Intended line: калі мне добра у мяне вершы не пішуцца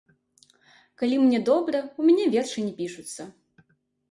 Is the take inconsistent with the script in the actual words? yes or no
no